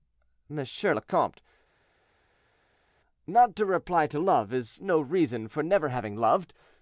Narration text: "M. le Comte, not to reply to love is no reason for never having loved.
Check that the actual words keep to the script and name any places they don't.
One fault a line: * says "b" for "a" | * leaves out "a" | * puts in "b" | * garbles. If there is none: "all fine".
all fine